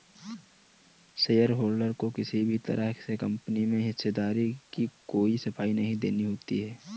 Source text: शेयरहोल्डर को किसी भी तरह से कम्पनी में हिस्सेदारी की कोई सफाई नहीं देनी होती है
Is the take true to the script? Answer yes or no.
yes